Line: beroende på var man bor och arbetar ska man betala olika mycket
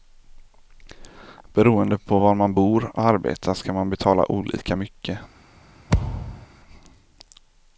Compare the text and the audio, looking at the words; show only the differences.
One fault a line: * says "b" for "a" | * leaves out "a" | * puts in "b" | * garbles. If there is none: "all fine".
all fine